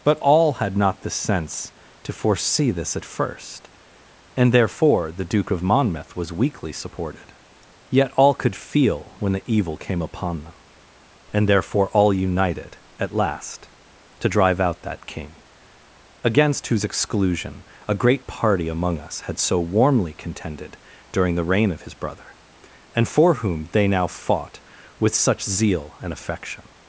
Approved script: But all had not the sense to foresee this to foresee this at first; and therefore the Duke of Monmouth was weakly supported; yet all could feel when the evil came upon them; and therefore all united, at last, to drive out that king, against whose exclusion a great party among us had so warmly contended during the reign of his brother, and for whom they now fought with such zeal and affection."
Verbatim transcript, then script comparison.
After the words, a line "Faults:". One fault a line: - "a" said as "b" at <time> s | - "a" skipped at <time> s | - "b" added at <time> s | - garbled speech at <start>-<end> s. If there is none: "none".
But all had not the sense to foresee this at first; and therefore the Duke of Monmouth was weakly supported; yet all could feel when the evil came upon them; and therefore all united, at last, to drive out that king, against whose exclusion a great party among us had so warmly contended during the reign of his brother, and for whom they now fought with such zeal and affection."
Faults:
- "to foresee this" skipped at 3.0 s